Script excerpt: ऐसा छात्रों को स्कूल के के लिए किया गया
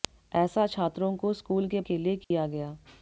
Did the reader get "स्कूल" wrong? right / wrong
right